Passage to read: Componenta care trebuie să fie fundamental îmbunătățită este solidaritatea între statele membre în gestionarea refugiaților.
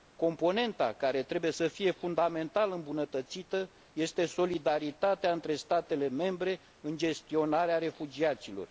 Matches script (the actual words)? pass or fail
pass